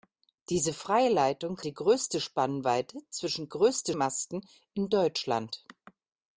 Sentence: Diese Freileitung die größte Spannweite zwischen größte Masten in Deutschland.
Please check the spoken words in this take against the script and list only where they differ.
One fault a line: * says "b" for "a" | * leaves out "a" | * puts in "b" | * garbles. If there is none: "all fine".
all fine